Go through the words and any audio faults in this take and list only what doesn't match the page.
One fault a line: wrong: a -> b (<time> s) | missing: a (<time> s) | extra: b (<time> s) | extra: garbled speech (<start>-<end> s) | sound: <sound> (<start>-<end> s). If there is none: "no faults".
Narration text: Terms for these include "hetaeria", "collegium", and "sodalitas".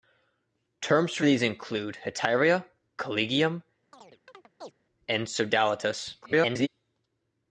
sound: chirp (3.9-4.7 s)
extra: garbled speech (6.2-6.7 s)